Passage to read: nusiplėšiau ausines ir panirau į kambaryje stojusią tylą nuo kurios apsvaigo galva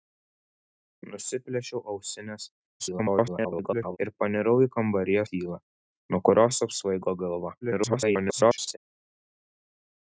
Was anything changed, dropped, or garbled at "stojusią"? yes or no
yes